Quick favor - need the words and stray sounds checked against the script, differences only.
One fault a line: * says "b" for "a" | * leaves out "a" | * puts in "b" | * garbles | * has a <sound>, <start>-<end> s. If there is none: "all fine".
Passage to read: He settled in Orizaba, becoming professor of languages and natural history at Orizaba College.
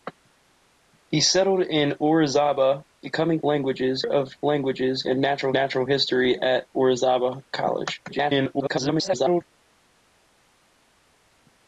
* says "languages" for "professor"
* puts in "natural"
* garbles